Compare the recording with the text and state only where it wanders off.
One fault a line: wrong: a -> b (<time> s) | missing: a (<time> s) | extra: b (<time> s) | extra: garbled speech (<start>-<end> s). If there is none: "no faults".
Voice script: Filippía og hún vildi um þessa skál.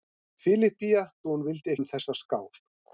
no faults